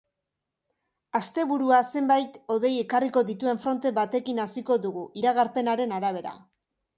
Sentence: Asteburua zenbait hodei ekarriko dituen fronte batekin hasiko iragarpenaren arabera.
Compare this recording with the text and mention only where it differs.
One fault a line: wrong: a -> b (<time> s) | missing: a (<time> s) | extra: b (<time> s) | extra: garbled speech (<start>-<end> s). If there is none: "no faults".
extra: dugu (4.9 s)